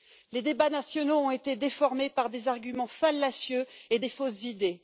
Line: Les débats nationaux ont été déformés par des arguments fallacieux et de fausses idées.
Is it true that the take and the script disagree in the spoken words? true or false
false